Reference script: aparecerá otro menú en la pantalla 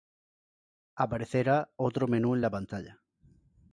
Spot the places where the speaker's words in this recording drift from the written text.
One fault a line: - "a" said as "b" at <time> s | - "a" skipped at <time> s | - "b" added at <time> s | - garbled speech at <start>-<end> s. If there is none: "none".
none